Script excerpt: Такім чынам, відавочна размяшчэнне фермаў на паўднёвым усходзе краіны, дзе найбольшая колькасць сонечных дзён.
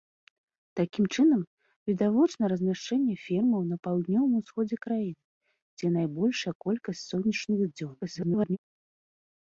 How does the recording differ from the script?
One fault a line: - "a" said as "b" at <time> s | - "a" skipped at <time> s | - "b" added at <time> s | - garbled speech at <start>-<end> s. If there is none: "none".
- garbled speech at 8.0-8.6 s